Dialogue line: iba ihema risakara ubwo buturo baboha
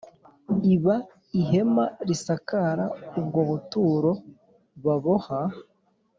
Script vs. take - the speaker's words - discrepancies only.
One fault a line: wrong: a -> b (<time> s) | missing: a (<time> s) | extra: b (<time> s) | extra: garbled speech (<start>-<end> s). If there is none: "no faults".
no faults